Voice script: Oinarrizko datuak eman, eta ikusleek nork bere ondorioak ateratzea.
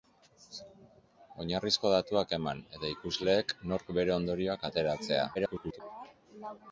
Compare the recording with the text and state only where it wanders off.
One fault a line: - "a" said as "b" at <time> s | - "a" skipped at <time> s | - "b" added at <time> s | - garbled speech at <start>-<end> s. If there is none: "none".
- garbled speech at 5.3-5.8 s